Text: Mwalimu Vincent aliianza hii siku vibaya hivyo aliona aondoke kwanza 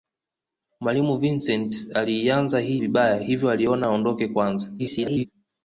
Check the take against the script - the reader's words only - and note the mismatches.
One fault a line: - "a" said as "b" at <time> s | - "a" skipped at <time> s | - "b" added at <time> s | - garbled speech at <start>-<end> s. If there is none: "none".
- "siku" skipped at 2.8 s
- garbled speech at 4.8-5.3 s